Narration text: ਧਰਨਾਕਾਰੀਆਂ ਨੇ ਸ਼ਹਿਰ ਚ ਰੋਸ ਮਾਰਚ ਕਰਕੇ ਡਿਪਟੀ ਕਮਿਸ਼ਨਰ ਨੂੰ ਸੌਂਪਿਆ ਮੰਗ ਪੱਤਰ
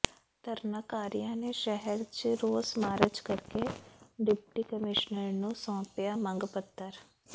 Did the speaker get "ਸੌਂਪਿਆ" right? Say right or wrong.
right